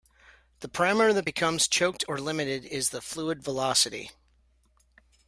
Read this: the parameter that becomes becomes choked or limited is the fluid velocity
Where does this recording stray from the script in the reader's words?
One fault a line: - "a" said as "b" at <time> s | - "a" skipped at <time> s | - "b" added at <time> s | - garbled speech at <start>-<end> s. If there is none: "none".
- "becomes" skipped at 1.7 s